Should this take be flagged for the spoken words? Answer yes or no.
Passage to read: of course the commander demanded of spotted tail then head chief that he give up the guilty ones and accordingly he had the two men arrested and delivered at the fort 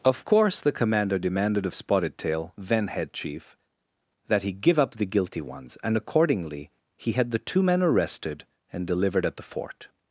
no